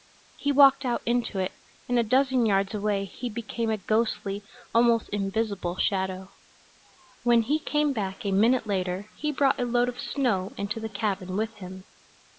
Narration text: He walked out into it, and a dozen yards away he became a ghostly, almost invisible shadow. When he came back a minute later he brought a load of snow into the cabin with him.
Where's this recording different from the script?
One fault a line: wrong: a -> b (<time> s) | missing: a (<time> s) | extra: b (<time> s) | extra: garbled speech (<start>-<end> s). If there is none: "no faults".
no faults